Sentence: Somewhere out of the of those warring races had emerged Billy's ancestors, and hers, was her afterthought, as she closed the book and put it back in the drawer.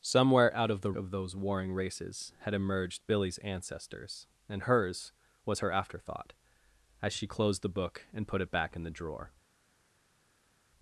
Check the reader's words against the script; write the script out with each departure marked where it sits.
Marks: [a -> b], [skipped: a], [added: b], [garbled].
Somewhere out of the of those warring races had emerged Billy's ancestors, and hers, was her afterthought, as she closed the book and put it back in the drawer.